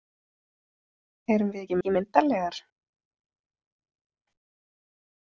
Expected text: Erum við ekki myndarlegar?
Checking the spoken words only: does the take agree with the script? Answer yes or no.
no